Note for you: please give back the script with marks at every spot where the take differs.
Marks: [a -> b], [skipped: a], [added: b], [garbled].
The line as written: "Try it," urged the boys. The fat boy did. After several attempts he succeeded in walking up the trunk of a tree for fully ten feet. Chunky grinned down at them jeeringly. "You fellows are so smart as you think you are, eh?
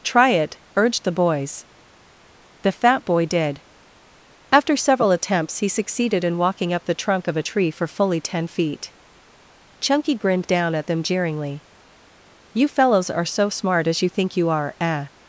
"Try it," urged the boys. The fat boy did. After several attempts he succeeded in walking up the trunk of a tree for fully ten feet. Chunky grinned down at them jeeringly. "You fellows are so smart as you think you are, eh?